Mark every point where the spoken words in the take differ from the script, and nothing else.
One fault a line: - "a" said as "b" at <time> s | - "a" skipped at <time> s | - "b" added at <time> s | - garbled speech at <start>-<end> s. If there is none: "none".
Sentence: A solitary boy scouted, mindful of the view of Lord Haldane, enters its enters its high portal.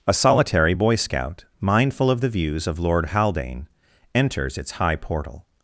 - "scouted" said as "scout" at 1.0 s
- "view" said as "views" at 2.3 s
- "enters its" skipped at 4.7 s